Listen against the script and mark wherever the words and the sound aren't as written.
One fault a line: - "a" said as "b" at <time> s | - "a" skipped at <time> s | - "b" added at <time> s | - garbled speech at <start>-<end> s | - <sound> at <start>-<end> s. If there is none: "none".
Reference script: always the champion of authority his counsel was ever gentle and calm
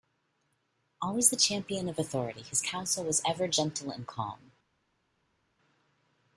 none